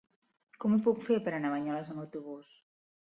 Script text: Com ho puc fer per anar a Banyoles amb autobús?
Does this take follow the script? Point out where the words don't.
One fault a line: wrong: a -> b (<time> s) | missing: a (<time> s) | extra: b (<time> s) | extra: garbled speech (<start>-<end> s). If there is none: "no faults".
no faults